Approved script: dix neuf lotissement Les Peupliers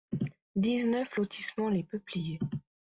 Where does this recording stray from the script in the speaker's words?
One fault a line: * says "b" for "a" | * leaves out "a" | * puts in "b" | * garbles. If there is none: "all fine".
all fine